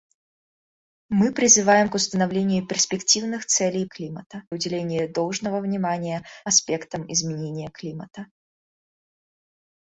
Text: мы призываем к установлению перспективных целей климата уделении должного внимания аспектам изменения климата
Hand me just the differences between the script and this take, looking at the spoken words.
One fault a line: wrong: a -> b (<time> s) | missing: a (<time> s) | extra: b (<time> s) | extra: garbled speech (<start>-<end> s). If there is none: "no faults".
no faults